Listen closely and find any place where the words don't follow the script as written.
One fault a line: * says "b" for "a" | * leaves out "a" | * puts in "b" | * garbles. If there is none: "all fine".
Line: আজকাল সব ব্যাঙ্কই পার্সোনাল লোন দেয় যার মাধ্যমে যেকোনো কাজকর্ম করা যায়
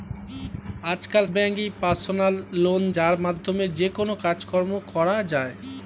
* leaves out "সব"
* leaves out "দেয়"